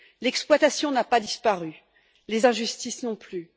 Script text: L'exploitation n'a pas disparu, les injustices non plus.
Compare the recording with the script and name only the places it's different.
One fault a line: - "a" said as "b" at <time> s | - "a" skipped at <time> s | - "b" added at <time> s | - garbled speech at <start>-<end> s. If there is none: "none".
none